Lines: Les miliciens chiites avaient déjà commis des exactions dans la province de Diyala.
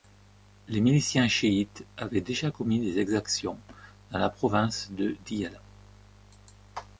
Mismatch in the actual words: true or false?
false